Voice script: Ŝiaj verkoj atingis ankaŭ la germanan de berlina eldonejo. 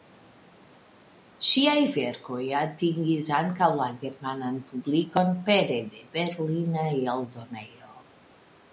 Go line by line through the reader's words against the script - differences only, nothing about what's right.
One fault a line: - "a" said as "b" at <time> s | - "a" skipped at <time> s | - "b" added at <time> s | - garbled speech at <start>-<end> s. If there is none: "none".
- "publikon pere" added at 4.7 s